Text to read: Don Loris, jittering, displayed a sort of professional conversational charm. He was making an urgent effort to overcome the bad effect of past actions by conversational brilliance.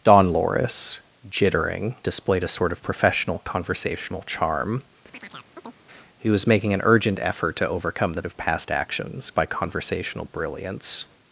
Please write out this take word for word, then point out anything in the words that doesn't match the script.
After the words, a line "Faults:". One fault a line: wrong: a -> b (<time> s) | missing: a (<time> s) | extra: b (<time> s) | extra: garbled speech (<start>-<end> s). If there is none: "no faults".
Don Loris, jittering, displayed a sort of professional conversational charm. He was making an urgent effort to overcome the of past actions by conversational brilliance.
Faults:
missing: bad effect (8.2 s)